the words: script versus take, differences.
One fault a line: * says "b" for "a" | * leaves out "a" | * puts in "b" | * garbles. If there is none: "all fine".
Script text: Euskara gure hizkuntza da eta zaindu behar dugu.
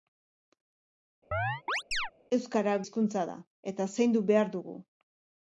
* leaves out "gure"